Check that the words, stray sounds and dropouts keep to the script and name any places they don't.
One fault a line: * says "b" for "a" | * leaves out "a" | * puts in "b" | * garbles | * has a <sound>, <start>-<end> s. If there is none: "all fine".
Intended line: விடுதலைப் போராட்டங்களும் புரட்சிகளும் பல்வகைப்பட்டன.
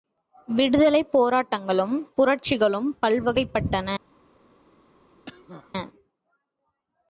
* has a cough, 5.3-5.7 s